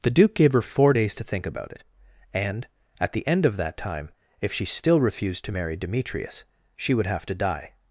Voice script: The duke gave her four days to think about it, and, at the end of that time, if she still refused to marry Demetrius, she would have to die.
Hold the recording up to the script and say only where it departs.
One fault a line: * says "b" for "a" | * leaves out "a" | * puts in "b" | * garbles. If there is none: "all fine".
all fine